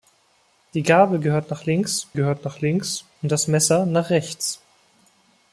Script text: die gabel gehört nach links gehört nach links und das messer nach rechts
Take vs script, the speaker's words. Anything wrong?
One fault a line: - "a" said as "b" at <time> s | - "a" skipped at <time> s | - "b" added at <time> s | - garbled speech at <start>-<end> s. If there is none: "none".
none